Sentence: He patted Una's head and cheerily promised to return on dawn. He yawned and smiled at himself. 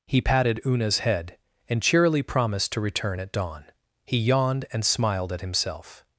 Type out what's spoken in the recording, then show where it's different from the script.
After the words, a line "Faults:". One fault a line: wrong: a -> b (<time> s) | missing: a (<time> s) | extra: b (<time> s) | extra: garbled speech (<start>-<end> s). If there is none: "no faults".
He patted Una's head and cheerily promised to return at dawn. He yawned and smiled at himself.
Faults:
wrong: on -> at (3.2 s)